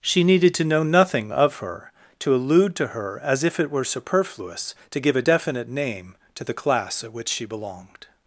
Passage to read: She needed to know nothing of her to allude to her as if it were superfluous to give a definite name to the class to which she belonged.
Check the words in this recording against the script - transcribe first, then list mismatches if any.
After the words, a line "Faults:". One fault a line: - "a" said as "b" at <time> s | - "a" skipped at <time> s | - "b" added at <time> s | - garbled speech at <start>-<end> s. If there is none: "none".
She needed to know nothing of her to allude to her as if it were superfluous to give a definite name to the class at which she belonged.
Faults:
- "to" said as "at" at 7.0 s